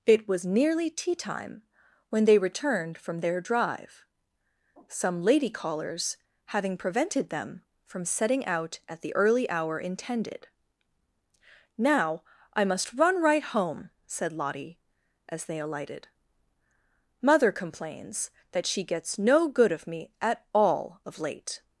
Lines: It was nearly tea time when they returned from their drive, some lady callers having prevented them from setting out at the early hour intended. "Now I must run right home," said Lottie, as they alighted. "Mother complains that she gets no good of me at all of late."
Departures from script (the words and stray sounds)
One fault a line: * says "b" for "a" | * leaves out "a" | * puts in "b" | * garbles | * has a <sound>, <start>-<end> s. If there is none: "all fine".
all fine